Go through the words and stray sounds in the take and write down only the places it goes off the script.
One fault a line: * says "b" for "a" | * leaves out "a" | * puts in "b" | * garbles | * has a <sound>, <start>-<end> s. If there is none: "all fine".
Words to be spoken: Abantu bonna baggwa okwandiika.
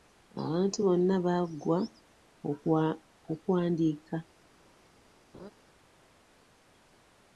* has a laugh, 5.3-5.5 s